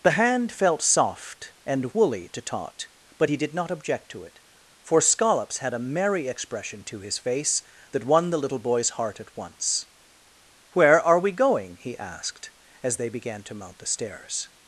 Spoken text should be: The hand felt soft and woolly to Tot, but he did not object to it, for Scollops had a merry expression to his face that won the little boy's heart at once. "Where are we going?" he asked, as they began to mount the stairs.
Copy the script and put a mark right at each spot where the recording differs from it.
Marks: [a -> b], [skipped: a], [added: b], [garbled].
The hand felt soft and woolly to Tot, but he did not object to it, for Scollops had a merry expression to his face that won the little boy's heart at once. "Where are we going?" he asked, as they began to mount the stairs.